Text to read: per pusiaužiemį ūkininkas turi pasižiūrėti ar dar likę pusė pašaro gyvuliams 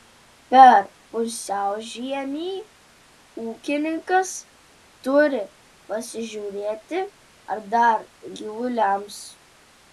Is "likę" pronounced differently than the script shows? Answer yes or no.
yes